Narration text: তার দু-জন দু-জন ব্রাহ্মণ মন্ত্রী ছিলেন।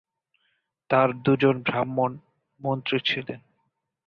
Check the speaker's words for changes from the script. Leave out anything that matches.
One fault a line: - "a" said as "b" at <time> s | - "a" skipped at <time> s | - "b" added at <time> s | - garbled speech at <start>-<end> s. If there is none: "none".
- "দু-জন" skipped at 1.6 s